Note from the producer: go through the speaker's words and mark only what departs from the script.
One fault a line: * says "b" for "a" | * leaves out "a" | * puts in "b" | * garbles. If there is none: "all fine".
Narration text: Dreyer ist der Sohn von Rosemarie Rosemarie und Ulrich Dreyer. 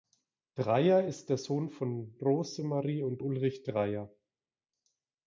* leaves out "Rosemarie"